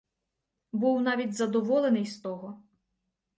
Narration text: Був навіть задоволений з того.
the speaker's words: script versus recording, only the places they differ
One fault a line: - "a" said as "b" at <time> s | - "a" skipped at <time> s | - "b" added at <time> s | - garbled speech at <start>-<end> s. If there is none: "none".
none